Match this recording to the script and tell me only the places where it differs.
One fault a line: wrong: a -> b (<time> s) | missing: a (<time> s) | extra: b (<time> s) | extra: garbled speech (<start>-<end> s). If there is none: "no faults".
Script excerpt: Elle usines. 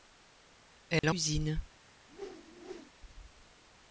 no faults